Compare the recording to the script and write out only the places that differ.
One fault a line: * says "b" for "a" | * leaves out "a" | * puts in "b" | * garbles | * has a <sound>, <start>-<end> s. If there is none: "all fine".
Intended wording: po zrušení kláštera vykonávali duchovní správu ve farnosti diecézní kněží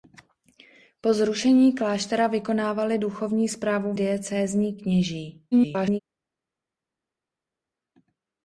* leaves out "ve farnosti"
* garbles